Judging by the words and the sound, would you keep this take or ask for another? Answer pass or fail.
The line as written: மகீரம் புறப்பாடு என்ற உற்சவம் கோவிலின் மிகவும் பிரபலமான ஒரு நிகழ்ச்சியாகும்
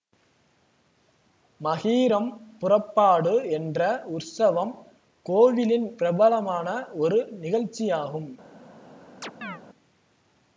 fail